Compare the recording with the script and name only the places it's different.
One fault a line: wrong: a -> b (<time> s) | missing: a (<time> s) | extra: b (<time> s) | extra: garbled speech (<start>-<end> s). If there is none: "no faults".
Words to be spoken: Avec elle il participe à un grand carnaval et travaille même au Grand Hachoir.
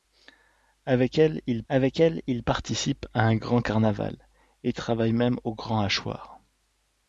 extra: avec elle il (1.7 s)